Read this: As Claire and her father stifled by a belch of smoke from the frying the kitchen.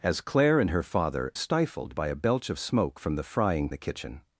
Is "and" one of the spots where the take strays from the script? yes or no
no